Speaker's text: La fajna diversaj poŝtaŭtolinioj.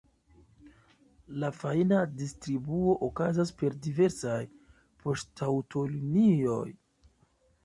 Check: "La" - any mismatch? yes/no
no